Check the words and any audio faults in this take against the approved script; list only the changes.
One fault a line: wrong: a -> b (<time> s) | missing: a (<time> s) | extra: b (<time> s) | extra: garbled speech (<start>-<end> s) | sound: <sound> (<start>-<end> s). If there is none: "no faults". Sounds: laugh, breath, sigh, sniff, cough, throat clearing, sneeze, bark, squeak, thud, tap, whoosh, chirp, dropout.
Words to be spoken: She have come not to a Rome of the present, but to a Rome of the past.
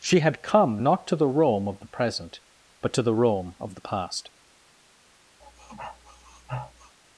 wrong: have -> had (0.2 s)
wrong: a -> the (1.2 s)
wrong: a -> the (3.0 s)
sound: sniff (5.4-7.0 s)